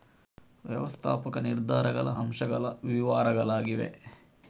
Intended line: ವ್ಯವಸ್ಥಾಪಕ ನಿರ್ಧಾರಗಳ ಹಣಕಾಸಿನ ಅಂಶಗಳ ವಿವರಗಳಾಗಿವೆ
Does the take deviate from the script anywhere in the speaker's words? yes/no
yes